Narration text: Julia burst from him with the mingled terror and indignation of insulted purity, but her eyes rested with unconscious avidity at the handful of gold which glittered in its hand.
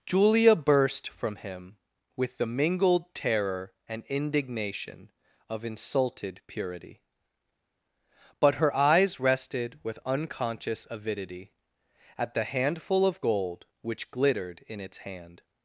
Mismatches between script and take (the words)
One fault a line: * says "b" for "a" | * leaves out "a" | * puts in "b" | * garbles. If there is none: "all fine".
all fine